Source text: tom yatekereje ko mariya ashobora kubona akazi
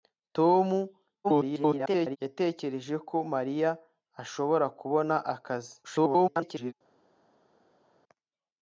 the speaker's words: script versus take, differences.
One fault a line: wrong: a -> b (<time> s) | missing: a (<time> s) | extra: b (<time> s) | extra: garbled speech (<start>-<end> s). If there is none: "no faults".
extra: garbled speech (1.2-2.2 s)
extra: garbled speech (5.8-6.7 s)